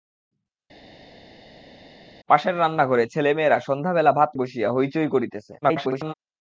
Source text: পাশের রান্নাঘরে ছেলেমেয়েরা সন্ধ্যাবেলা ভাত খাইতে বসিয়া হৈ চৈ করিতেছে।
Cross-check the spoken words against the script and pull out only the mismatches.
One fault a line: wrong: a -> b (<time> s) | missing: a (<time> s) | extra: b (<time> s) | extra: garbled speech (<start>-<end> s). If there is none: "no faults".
missing: খাইতে (4.3 s)
extra: garbled speech (5.6-6.1 s)